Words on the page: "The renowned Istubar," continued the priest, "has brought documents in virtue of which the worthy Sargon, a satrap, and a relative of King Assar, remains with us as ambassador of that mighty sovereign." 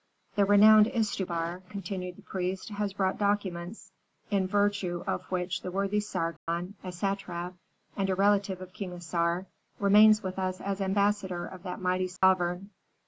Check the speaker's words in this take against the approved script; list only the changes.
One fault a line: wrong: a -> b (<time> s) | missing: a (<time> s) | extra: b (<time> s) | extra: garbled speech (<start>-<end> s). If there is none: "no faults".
no faults